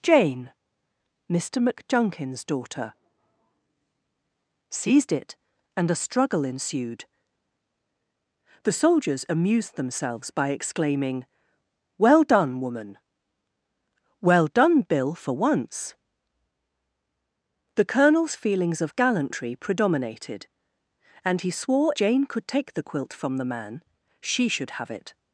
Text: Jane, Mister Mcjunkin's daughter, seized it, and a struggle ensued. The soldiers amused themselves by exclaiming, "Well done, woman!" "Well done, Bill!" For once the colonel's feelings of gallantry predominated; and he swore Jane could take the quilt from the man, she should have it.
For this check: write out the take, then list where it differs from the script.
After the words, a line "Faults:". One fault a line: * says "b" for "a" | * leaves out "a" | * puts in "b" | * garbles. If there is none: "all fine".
Jane, Mister Mcjunkin's daughter, seized it, and a struggle ensued. The soldiers amused themselves by exclaiming, "Well done, woman!" "Well done, Bill!" For once the colonel's feelings of gallantry predominated; and he swore Jane could take the quilt from the man, she should have it.
Faults:
all fine